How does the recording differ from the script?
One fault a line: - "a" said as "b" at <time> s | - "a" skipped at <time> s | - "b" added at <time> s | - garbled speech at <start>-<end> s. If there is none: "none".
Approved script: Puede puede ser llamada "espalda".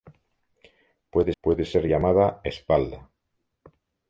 none